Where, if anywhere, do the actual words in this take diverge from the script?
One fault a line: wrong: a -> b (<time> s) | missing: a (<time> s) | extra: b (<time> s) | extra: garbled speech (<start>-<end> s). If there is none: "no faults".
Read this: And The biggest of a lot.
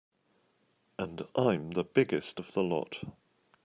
extra: I'm (1.4 s)
wrong: a -> the (2.5 s)